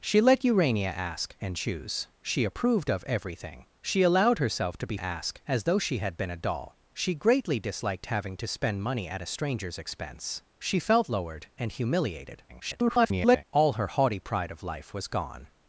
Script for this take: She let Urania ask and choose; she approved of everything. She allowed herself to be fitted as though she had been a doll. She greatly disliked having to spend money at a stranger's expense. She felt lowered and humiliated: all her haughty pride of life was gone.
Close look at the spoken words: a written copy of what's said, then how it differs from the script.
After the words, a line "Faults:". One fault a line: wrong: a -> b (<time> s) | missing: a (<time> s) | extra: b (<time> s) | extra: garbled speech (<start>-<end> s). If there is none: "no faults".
She let Urania ask and choose; she approved of everything. She allowed herself to be ask as though she had been a doll. She greatly disliked having to spend money at a stranger's expense. She felt lowered and humiliated: [garbled] all her haughty pride of life was gone.
Faults:
wrong: fitted -> ask (4.9 s)
extra: garbled speech (12.5-13.4 s)